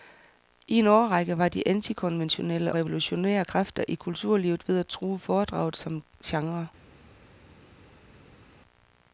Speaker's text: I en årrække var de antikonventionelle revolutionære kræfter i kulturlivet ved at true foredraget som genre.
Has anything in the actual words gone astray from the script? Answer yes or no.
no